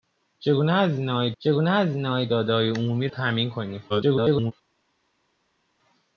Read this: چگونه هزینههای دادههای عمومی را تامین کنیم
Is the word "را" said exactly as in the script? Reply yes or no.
no